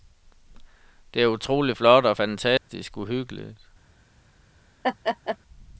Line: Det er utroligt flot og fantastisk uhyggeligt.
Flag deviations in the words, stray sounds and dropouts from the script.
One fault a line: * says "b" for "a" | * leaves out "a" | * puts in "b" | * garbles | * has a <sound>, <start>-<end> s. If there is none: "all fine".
* has a dropout, 2.6-2.7 s
* has a laugh, 4.8-5.4 s